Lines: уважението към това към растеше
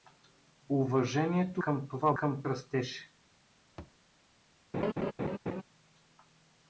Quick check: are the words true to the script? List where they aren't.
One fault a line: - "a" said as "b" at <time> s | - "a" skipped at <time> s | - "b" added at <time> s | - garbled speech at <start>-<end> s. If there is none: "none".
none